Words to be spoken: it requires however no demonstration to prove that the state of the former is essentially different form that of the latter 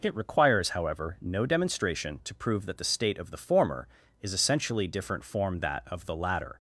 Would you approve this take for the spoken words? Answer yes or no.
yes